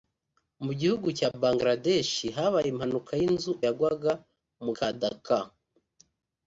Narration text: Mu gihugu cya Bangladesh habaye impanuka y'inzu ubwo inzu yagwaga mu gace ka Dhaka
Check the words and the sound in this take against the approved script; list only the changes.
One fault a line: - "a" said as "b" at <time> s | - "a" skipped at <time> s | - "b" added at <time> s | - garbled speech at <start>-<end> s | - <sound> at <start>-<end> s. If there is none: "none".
- "ubwo inzu" skipped at 3.5 s
- "gace" skipped at 4.7 s